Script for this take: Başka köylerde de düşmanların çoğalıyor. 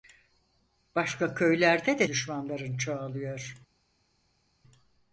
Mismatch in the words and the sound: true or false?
false